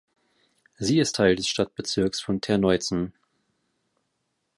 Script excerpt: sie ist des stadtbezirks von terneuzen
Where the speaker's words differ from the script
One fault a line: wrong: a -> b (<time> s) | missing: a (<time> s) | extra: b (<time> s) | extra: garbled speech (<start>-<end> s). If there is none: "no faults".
extra: teil (1.2 s)